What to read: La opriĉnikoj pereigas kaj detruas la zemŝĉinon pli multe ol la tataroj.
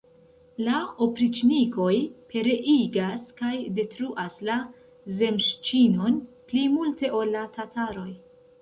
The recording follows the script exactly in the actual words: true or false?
true